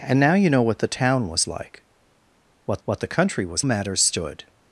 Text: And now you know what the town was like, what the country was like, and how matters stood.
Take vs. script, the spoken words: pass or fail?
fail